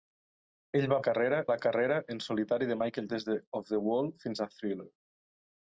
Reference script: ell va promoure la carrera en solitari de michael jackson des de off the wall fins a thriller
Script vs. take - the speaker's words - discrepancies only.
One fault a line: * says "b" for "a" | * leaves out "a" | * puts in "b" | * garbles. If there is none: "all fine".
* says "carrera" for "promoure"
* leaves out "jackson"